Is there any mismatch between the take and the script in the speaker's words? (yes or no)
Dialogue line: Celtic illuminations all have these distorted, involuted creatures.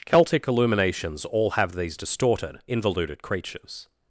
no